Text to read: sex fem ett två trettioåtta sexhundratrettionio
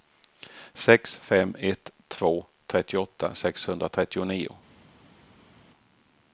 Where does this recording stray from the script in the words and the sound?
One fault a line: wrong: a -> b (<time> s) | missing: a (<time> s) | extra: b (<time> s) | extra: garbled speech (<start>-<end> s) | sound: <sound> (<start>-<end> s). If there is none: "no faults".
no faults